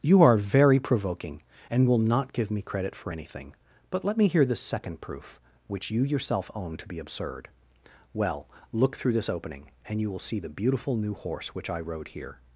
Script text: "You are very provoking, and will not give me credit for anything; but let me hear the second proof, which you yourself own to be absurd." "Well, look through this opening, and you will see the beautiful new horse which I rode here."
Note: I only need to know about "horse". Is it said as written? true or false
true